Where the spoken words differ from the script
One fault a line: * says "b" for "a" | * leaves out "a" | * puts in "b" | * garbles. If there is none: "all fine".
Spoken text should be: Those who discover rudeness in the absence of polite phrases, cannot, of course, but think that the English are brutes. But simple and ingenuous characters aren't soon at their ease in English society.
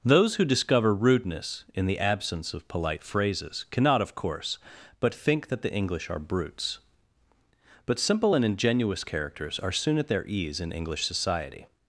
* says "are" for "aren't"